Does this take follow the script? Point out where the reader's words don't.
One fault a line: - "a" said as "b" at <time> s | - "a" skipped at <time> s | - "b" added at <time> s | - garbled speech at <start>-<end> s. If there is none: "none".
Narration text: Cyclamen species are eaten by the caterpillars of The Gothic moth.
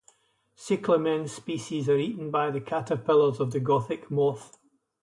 none